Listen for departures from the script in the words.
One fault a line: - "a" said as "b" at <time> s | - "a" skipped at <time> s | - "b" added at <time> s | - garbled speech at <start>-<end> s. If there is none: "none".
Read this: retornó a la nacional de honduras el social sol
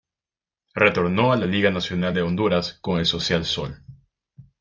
- "liga" added at 1.4 s
- "con" added at 2.8 s